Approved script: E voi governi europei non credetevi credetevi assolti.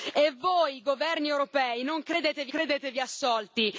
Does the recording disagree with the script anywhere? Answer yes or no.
no